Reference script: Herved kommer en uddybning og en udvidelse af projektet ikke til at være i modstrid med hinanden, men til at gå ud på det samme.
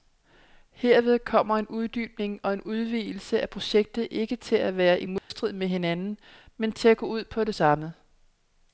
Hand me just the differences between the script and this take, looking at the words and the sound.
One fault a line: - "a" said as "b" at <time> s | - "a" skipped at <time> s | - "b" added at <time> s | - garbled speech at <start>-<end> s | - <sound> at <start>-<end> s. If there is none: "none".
- dropout at 5.2-5.3 s